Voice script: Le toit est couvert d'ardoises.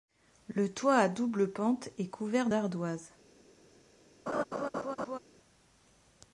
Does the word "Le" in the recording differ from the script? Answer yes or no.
no